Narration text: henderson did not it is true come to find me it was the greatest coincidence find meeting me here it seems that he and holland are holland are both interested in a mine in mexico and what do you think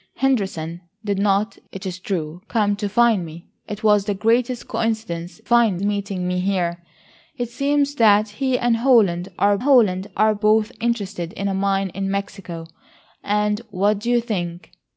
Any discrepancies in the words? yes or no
no